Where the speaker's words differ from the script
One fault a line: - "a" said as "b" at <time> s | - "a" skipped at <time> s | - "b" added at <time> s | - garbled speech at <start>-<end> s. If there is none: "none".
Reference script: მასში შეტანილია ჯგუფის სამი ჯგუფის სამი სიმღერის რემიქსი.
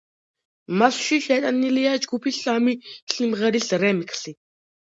- "ჯგუფის სამი" skipped at 2.8 s